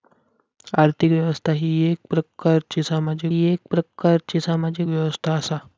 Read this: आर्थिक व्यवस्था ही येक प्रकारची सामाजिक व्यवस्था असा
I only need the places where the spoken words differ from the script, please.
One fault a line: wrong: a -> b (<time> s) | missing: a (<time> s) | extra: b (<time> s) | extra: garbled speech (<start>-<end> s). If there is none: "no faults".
extra: येक प्रकारची सामाजिक (3.4 s)